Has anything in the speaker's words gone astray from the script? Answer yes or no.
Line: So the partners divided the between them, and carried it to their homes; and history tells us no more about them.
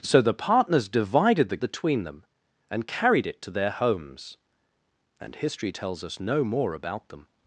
no